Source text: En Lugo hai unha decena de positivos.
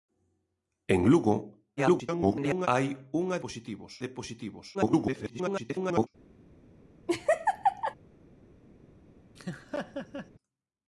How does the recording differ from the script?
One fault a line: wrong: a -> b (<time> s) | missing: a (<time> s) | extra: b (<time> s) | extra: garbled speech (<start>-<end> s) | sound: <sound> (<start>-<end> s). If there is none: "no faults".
extra: garbled speech (1.8-2.7 s)
wrong: decena -> positivos (3.4 s)
extra: garbled speech (4.7-6.1 s)
sound: laugh (7.1-8.0 s)
sound: laugh (9.4-10.3 s)